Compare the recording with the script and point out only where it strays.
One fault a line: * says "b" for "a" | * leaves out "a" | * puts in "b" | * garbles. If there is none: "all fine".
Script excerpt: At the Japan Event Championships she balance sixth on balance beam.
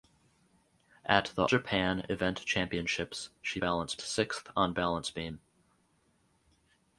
all fine